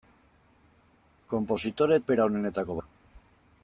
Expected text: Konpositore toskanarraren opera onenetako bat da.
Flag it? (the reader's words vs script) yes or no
yes